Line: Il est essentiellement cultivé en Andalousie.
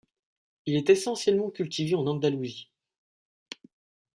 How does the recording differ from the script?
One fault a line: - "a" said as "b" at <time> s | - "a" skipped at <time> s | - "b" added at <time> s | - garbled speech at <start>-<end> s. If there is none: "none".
none